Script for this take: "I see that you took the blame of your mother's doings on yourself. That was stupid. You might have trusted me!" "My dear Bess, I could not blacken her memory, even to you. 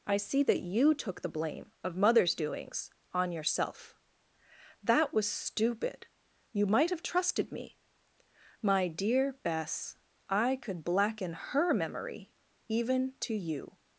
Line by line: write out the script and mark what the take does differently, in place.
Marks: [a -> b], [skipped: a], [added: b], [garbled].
"I see that you took the blame of [skipped: your] mother's doings on yourself. That was stupid. You might have trusted me!" "My dear Bess, I could [skipped: not] blacken her memory, even to you.